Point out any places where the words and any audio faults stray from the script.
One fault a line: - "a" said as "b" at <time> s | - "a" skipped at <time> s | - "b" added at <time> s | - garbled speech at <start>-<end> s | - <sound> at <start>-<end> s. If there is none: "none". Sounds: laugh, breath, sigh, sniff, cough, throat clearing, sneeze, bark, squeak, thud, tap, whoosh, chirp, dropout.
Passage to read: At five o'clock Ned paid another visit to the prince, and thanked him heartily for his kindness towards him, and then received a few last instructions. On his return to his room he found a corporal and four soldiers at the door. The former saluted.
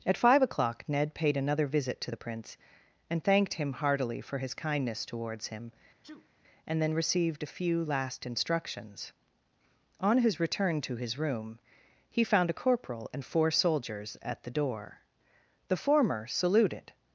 - sneeze at 6.0-6.3 s